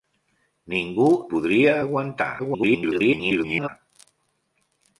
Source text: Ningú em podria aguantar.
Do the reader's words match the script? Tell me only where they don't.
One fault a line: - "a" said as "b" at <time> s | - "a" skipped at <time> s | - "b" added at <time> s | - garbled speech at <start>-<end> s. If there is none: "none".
- "em" skipped at 1.1 s
- garbled speech at 2.4-3.7 s